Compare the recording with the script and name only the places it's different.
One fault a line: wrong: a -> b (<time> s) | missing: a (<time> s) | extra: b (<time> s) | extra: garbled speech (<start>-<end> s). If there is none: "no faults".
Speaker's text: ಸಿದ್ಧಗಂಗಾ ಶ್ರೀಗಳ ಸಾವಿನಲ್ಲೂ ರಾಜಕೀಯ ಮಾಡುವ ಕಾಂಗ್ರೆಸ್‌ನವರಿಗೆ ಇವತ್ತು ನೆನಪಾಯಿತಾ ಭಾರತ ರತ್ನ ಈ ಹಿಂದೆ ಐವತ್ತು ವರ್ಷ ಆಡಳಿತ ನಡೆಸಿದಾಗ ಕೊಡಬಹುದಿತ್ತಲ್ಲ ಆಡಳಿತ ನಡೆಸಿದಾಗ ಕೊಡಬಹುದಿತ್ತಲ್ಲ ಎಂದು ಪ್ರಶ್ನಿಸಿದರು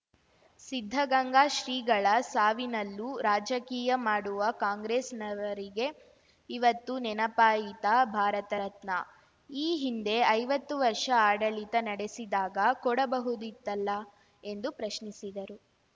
missing: ಆಡಳಿತ ನಡೆಸಿದಾಗ ಕೊಡಬಹುದಿತ್ತಲ್ಲ (13.9 s)